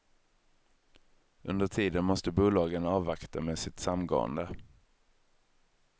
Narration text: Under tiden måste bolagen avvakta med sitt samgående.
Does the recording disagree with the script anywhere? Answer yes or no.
no